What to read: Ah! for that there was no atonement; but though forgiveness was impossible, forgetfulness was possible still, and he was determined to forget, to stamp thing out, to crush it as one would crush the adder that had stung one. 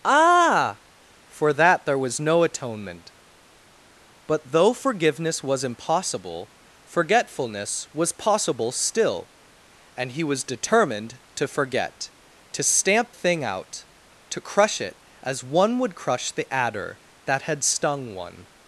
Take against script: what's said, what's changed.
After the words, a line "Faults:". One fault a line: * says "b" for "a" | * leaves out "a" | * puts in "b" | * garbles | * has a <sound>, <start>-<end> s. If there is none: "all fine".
Ah! for that there was no atonement; but though forgiveness was impossible, forgetfulness was possible still, and he was determined to forget, to stamp thing out, to crush it as one would crush the adder that had stung one.
Faults:
all fine